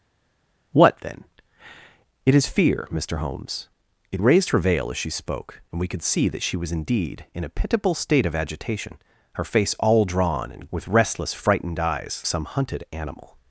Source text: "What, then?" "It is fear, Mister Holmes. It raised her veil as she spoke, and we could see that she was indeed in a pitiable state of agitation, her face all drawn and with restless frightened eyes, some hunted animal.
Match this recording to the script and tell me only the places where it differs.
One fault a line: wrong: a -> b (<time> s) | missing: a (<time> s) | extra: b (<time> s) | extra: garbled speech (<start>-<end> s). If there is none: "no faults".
no faults